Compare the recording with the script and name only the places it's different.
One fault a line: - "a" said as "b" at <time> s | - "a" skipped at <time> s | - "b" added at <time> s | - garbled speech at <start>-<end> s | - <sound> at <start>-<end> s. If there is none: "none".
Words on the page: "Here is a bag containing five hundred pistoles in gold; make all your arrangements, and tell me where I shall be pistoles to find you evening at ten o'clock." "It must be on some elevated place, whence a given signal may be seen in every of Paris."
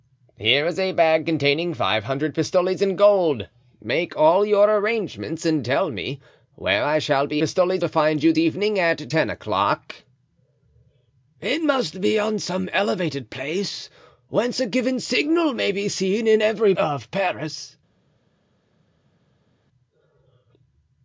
none